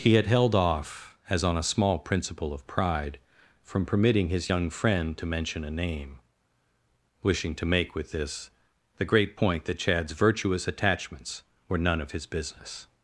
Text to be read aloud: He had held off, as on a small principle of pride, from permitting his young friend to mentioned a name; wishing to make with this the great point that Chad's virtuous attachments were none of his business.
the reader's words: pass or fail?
fail